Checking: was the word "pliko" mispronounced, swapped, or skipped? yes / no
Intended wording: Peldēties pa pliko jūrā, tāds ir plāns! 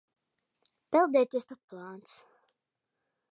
yes